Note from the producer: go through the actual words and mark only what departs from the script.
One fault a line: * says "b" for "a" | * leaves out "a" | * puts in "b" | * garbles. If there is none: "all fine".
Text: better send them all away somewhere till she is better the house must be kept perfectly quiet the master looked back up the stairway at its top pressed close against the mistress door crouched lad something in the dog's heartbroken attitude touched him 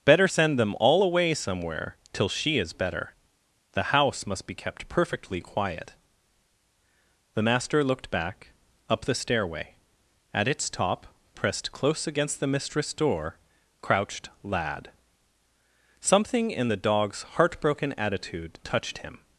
all fine